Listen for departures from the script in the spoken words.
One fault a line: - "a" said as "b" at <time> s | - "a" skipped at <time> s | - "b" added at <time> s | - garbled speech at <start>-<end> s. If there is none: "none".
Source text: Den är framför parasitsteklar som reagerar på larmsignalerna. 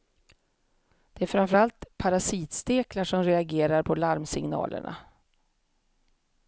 - "Den" said as "Det" at 1.1 s
- "allt" added at 1.5 s